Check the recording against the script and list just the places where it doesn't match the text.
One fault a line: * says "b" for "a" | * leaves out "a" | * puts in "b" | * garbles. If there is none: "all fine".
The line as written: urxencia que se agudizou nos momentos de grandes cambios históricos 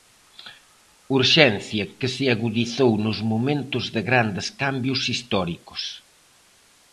all fine